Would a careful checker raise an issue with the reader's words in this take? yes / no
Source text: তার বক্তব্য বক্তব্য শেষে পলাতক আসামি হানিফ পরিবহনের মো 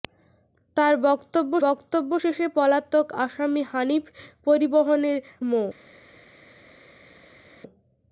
no